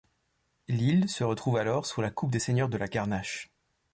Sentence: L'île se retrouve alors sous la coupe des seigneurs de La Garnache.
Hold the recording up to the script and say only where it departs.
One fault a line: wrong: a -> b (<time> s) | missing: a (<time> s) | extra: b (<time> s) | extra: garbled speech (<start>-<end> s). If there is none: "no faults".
no faults